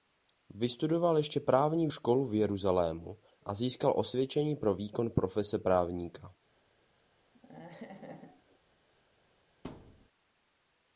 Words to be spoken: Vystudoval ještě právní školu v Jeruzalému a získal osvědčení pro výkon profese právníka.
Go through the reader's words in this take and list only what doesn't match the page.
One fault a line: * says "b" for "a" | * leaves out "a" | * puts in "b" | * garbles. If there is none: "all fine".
all fine